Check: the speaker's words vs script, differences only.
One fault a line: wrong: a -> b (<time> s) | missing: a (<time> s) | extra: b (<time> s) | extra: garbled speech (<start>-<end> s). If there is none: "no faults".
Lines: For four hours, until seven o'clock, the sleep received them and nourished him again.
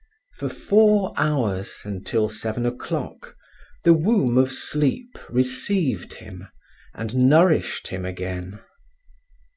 extra: womb of (3.9 s)
wrong: them -> him (6.1 s)